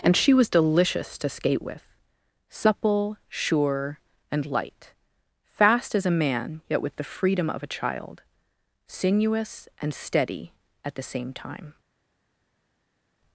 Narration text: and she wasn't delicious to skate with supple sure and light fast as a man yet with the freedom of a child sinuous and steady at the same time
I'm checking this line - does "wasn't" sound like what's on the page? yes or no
no